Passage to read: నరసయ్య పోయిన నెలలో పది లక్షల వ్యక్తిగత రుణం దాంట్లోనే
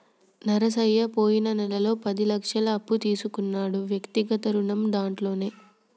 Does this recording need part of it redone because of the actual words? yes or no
yes